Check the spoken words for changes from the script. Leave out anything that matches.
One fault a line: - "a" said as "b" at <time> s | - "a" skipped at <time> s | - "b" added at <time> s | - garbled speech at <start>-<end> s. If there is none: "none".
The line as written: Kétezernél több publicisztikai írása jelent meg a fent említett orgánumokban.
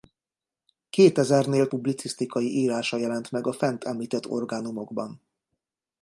- "több" skipped at 1.7 s